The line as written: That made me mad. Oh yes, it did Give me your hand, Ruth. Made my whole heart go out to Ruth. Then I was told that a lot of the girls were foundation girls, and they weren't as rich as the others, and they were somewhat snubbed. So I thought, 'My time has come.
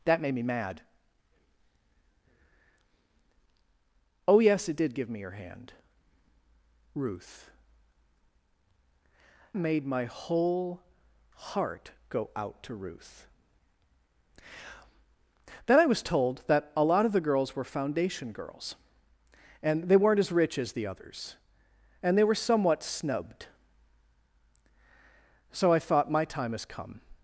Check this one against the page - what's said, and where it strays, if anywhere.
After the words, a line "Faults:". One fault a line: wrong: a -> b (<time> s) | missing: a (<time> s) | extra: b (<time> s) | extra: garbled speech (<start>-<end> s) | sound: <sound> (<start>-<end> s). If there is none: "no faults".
That made me mad. Oh yes, it did Give me your hand, Ruth. Made my whole heart go out to Ruth. Then I was told that a lot of the girls were foundation girls, and they weren't as rich as the others, and they were somewhat snubbed. So I thought, 'My time has come.
Faults:
no faults